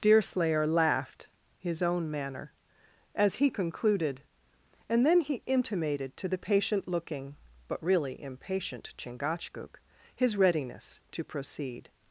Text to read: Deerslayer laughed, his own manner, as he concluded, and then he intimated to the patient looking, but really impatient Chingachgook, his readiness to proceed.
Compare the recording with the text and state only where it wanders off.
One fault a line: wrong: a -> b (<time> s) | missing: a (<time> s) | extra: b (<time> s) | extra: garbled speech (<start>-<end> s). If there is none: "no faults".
no faults